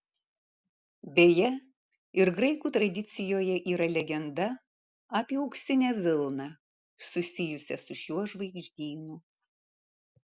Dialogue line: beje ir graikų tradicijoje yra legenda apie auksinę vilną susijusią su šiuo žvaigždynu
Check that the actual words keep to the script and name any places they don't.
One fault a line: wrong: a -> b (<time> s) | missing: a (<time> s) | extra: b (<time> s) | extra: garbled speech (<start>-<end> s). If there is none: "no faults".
no faults